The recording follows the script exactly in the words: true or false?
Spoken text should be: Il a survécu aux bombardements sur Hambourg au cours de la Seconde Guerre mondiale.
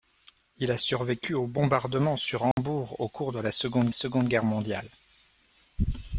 false